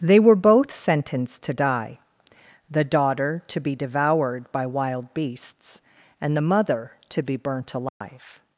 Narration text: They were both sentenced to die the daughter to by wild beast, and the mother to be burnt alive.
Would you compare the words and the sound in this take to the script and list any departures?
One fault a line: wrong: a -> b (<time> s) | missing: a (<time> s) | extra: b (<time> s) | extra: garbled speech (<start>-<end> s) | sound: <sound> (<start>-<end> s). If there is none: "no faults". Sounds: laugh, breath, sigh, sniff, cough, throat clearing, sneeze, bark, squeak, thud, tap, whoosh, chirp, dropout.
extra: be devoured (3.6 s)
wrong: beast -> beasts (5.1 s)
sound: dropout (7.9-8.0 s)